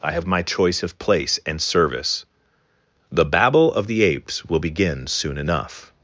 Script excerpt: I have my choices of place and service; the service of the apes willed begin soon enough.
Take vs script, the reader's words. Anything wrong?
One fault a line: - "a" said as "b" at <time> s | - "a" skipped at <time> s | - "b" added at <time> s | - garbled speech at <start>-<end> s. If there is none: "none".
- "choices" said as "choice" at 0.4 s
- "service" said as "babble" at 3.2 s
- "willed" said as "will" at 4.4 s